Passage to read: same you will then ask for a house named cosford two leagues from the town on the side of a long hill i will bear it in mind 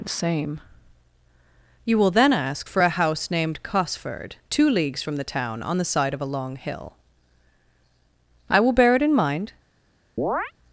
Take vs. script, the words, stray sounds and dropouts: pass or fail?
fail